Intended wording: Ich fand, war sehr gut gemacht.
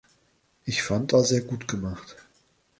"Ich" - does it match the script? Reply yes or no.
yes